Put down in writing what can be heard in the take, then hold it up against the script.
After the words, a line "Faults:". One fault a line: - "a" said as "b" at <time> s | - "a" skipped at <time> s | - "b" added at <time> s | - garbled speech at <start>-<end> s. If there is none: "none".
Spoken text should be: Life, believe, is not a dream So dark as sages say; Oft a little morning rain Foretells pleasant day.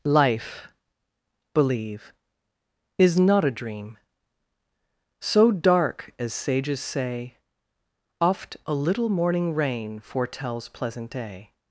Life, believe, is not a dream So dark as sages say; Oft a little morning rain Foretells pleasant day.
Faults:
none